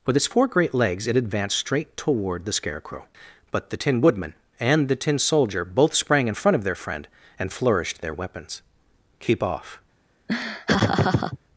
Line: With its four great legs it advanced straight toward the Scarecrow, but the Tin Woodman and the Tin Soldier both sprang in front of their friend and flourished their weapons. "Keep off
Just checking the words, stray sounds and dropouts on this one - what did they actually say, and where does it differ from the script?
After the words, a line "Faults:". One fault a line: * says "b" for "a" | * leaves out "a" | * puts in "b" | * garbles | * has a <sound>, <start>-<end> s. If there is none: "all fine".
With its four great legs it advanced straight toward the Scarecrow, but the Tin Woodman and the Tin Soldier both sprang in front of their friend and flourished their weapons. "Keep off
Faults:
* has a laugh, 10.3-11.4 s